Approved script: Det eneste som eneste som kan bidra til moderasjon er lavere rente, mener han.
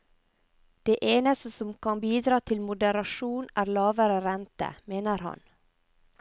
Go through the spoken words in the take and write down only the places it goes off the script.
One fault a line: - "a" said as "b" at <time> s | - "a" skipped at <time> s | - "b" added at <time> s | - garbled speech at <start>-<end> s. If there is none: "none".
- "eneste som" skipped at 1.7 s